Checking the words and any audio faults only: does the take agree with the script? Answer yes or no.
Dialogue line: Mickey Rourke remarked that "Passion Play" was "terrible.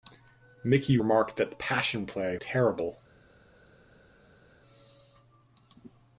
no